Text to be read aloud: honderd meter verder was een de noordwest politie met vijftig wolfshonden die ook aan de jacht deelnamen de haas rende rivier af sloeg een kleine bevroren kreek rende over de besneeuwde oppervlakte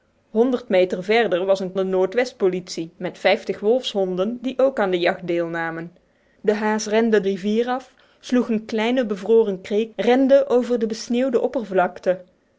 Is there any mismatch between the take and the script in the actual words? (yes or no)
no